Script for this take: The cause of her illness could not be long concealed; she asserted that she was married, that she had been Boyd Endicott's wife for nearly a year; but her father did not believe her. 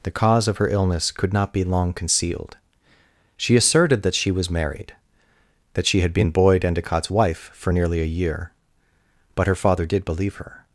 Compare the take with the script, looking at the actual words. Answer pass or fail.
fail